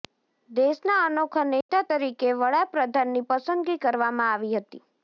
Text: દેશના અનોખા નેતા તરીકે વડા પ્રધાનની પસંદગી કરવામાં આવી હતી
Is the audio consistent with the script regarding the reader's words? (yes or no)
yes